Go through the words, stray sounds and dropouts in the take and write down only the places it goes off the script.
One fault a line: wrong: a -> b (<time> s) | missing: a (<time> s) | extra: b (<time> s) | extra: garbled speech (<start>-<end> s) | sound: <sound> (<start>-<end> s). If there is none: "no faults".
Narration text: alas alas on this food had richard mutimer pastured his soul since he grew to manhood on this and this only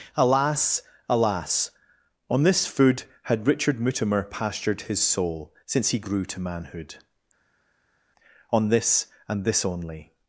no faults